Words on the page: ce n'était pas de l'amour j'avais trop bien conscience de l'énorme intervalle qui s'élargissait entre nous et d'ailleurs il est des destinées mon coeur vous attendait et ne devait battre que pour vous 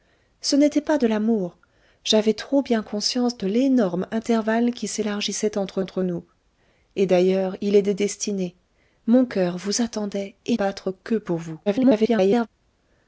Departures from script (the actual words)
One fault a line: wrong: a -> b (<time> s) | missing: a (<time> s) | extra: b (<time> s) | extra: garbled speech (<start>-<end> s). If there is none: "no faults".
extra: entre (5.8 s)
missing: ne devait (10.6 s)
extra: garbled speech (11.7-12.5 s)